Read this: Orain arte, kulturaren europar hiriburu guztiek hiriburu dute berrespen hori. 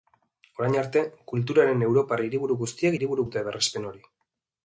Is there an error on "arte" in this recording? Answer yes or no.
no